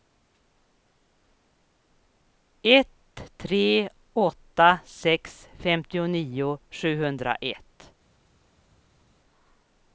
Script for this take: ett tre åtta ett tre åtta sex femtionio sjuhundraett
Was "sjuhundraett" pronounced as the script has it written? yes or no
yes